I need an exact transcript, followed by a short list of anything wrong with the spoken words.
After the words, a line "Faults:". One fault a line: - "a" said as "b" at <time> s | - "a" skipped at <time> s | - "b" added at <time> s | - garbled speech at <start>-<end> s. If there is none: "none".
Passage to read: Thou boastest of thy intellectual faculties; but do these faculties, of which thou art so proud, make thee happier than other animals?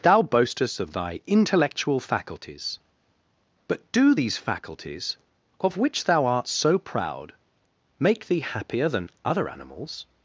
Thou boastest of thy intellectual faculties; but do these faculties, of which thou art so proud, make thee happier than other animals?
Faults:
none